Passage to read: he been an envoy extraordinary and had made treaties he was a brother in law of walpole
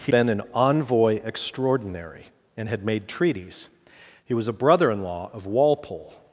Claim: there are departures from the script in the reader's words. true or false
false